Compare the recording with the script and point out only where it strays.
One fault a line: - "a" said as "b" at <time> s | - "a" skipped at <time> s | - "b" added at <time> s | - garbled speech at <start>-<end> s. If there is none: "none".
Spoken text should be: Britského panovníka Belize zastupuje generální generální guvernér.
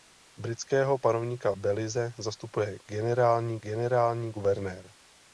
none